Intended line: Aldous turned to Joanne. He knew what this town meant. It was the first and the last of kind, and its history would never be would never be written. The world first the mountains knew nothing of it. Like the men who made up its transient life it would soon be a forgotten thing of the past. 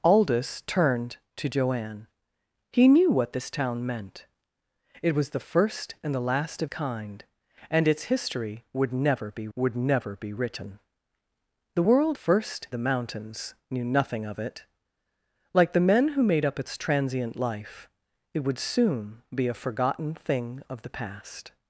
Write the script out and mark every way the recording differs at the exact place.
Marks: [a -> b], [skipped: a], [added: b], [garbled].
Aldous turned to Joanne. He knew what this town meant. It was the first and the last of kind, and its history would never be would never be written. The world first the mountains knew nothing of it. Like the men who made up its transient life it would soon be a forgotten thing of the past.